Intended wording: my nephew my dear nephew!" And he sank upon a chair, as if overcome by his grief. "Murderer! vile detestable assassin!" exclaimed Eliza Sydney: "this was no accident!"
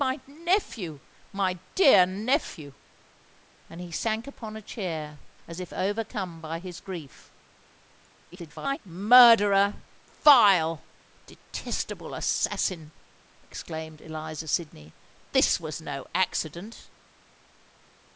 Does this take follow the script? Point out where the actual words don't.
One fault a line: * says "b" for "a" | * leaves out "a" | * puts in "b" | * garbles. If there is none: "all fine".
* garbles